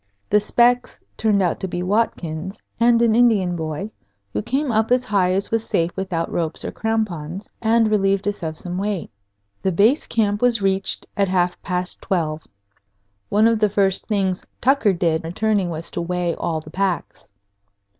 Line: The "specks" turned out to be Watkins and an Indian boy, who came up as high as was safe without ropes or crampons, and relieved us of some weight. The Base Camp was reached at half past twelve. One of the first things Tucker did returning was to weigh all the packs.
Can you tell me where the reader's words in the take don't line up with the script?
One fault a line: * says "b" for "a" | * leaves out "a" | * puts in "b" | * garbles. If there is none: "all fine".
all fine